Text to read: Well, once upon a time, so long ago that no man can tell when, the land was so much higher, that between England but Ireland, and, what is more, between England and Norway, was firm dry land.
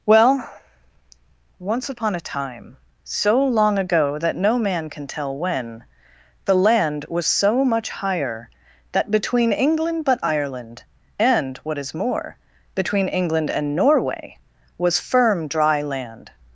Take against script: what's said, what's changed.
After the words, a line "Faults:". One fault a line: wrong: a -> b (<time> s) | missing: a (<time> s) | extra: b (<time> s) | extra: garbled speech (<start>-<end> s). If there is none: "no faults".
Well, once upon a time, so long ago that no man can tell when, the land was so much higher, that between England but Ireland, and, what is more, between England and Norway, was firm dry land.
Faults:
no faults